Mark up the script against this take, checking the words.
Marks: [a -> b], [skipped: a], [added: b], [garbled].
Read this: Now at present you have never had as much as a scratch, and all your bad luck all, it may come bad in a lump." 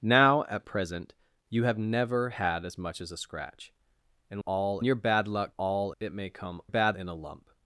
Now at present you have never had as much as a scratch, and all your bad luck all, it may come bad in a lump."